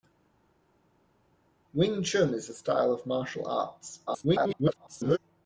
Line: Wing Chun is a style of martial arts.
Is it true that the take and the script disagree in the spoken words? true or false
true